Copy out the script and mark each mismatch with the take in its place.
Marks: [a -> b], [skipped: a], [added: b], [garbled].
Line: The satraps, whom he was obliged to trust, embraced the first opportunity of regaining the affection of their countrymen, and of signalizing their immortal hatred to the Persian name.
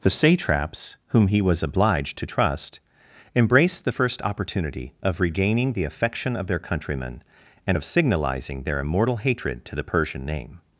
The satraps, whom he was obliged to trust, embraced the first opportunity of regaining the affection of their countrymen, and of signalizing their immortal hatred to the Persian name.